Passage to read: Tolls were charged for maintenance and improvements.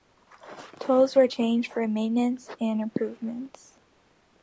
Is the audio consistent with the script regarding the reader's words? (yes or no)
yes